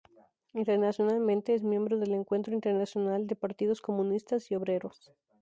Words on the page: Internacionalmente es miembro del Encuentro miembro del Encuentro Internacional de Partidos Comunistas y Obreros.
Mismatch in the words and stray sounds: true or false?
true